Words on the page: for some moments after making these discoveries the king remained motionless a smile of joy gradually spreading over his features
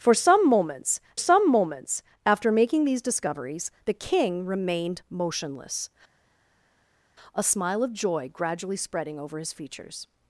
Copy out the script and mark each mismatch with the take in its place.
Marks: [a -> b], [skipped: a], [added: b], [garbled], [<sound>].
for some moments [added: some moments] after making these discoveries the king remained motionless a smile of joy gradually spreading over his features